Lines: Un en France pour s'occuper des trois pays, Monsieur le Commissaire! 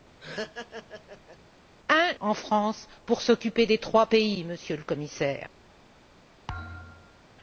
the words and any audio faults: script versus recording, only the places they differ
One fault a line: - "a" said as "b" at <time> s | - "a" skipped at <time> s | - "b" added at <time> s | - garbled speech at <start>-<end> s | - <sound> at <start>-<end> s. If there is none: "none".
- laugh at 0.2-1.4 s
- thud at 6.5-7.2 s